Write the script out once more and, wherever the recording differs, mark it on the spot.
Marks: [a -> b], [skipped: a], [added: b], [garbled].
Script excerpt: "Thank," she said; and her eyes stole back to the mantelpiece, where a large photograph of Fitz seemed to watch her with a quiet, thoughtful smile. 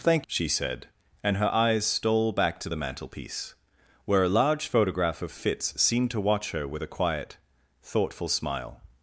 "Thank," she said; and her eyes stole back to the mantelpiece, where a large photograph of Fitz seemed to watch her with a quiet, thoughtful smile.